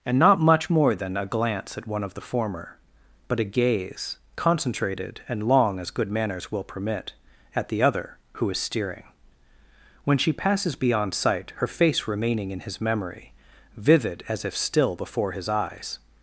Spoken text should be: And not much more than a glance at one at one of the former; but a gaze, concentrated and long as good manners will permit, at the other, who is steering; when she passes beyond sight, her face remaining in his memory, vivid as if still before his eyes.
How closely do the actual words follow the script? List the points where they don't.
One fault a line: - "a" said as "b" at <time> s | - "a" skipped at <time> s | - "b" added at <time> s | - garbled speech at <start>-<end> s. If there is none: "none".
- "at one" skipped at 2.0 s